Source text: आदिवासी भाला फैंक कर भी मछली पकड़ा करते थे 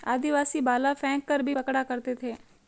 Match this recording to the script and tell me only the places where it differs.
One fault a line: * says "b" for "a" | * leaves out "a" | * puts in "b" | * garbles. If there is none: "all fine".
* leaves out "मछली"